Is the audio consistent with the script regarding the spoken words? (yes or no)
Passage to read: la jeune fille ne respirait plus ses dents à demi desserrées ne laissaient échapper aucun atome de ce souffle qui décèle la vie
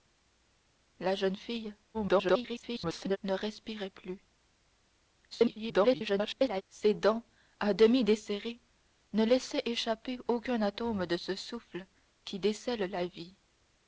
no